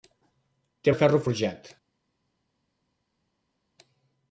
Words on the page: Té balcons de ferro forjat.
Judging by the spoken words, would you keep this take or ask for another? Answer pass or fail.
fail